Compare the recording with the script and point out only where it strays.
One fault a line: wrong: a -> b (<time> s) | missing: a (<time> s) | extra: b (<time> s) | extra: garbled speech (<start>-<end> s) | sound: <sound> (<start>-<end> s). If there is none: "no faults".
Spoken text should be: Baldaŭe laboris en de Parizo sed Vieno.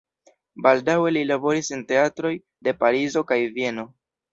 extra: li (1.1 s)
extra: teatroj (1.9 s)
wrong: sed -> kaj (3.3 s)